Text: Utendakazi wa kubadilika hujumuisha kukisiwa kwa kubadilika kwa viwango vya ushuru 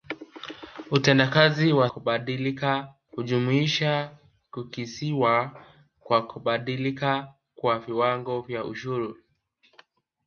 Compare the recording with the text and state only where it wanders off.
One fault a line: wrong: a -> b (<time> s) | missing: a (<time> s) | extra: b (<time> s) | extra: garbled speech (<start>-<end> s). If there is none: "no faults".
no faults